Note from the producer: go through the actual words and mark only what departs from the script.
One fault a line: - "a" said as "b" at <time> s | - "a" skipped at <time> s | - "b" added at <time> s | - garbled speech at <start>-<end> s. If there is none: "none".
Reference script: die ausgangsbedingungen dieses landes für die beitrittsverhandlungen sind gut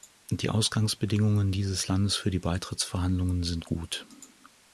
none